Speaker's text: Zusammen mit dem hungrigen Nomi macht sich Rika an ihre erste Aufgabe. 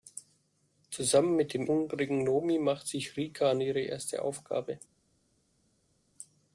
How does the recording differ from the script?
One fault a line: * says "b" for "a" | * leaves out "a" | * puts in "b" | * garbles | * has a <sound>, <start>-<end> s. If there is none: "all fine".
all fine